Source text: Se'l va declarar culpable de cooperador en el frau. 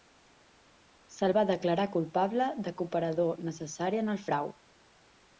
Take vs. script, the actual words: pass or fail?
fail